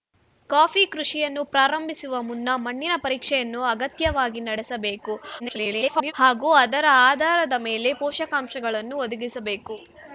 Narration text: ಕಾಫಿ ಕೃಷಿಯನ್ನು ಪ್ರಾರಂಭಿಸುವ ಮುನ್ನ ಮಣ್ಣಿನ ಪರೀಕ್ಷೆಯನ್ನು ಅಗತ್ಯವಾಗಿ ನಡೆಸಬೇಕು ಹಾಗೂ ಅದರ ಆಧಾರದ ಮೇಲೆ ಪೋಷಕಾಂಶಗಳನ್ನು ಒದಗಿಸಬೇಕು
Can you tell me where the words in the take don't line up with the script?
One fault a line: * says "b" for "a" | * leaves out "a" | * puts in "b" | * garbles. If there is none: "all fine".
* garbles